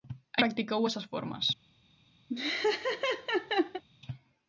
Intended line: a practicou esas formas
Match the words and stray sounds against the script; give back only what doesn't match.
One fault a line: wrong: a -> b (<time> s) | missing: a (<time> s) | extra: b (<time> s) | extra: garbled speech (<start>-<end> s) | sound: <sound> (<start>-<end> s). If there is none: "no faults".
sound: laugh (2.3-3.8 s)